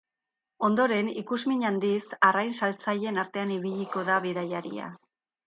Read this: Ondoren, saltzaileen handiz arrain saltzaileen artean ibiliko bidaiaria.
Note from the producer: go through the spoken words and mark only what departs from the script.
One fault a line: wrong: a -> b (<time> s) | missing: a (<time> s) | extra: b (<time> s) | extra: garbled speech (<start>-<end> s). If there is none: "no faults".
wrong: saltzaileen -> ikusmin (1.2 s)
extra: da (4.1 s)